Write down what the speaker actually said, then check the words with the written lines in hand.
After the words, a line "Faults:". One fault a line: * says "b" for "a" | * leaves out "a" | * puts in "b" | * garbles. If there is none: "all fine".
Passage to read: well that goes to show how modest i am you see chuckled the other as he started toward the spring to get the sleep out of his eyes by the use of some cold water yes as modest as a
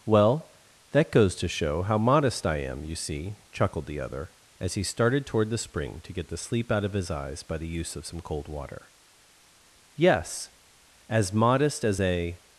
well that goes to show how modest i am you see chuckled the other as he started toward the spring to get the sleep out of his eyes by the use of some cold water yes as modest as a
Faults:
all fine